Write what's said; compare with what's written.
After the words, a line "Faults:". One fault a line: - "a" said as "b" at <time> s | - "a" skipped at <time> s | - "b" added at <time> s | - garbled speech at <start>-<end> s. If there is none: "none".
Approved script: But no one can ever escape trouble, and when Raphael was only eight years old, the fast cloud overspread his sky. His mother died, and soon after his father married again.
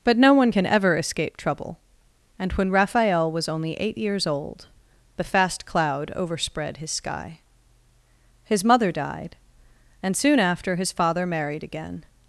But no one can ever escape trouble, and when Raphael was only eight years old, the fast cloud overspread his sky. His mother died, and soon after his father married again.
Faults:
none